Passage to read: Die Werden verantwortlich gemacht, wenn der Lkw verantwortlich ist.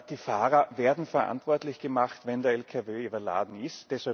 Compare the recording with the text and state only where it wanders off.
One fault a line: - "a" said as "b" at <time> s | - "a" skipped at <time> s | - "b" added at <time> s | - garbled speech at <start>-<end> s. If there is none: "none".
- "Fahrer" added at 0.2 s
- "verantwortlich" said as "überladen" at 3.0 s